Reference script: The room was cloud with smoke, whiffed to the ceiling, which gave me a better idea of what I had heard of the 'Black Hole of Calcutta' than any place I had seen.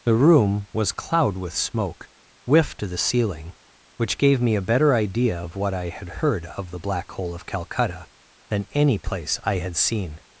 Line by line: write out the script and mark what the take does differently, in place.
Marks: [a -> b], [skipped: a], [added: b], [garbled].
The room was cloud with smoke, whiffed to the ceiling, which gave me a better idea of what I had heard of the 'Black Hole of Calcutta' than any place I had seen.